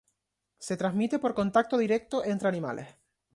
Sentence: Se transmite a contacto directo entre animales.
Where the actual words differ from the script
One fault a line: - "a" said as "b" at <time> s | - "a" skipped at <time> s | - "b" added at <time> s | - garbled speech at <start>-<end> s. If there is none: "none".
- "a" said as "por" at 1.2 s